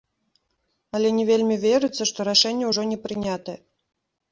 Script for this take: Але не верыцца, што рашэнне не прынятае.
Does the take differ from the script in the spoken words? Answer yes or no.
yes